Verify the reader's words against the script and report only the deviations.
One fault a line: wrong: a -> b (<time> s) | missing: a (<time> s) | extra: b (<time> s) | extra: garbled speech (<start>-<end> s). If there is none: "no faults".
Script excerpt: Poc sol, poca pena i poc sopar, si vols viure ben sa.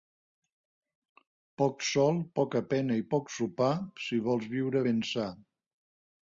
no faults